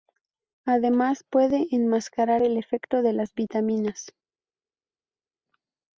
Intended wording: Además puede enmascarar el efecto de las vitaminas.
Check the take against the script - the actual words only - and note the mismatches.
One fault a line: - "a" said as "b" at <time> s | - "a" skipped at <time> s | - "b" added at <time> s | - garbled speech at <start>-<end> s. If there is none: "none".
none